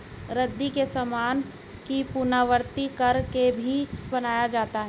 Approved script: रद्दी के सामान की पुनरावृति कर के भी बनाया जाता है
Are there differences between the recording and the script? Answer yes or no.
no